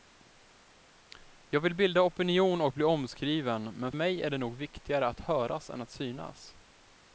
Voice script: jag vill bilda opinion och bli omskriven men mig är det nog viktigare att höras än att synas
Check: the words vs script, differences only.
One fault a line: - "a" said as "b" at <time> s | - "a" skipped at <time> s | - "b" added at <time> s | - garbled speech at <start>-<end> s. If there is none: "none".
none